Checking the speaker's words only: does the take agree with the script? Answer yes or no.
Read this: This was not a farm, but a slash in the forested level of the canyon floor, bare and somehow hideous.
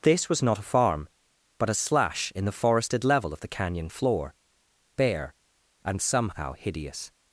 yes